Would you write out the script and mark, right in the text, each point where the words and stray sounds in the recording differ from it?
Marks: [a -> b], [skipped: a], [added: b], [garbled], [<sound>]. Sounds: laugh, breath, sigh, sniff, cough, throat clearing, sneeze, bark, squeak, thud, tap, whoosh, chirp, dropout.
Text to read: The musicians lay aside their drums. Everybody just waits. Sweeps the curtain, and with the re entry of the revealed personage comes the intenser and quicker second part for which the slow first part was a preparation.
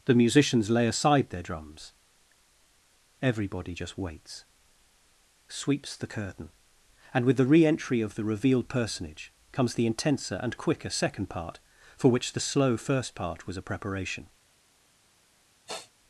The musicians lay aside their drums. Everybody just waits. Sweeps the curtain, and with the re entry of the revealed personage comes the intenser and quicker second part for which the slow first part was a preparation. [sniff]